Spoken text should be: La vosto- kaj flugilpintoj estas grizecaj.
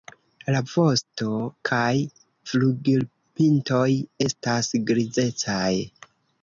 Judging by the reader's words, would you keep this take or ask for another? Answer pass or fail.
pass